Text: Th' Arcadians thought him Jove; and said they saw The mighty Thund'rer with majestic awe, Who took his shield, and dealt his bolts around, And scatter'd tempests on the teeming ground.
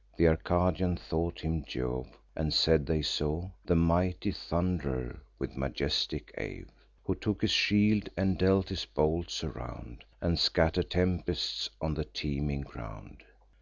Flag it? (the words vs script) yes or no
no